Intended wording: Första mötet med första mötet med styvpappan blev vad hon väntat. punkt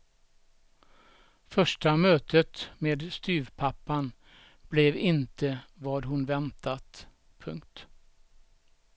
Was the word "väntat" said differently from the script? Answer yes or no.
no